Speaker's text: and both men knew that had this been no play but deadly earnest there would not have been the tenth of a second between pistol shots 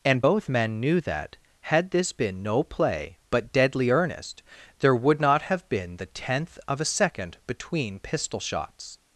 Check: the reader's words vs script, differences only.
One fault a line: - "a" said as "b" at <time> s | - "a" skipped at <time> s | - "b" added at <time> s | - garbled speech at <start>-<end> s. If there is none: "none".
none